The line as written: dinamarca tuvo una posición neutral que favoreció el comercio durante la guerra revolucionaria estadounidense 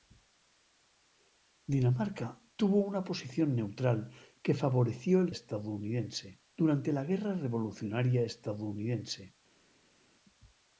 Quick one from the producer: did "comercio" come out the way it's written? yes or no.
no